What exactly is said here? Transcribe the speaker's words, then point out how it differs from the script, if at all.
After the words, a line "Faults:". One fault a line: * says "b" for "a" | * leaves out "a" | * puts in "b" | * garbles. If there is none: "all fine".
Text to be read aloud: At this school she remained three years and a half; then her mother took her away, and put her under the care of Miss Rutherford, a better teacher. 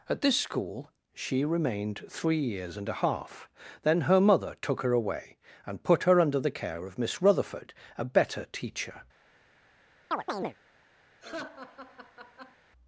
At this school she remained three years and a half; then her mother took her away, and put her under the care of Miss Rutherford, a better teacher.
Faults:
all fine